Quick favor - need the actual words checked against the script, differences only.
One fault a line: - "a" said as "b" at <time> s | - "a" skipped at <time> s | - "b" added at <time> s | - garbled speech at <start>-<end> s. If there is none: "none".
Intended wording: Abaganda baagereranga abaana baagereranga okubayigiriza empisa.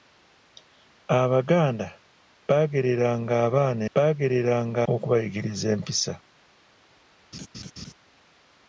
none